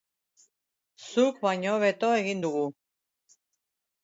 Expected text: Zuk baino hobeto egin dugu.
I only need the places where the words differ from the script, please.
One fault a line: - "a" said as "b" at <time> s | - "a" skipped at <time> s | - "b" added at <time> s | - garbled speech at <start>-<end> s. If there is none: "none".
none